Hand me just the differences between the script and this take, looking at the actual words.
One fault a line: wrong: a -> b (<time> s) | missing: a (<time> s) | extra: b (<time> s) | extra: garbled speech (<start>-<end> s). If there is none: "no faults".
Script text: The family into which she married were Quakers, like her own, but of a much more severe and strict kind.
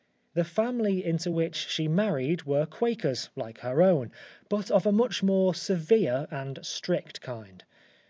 no faults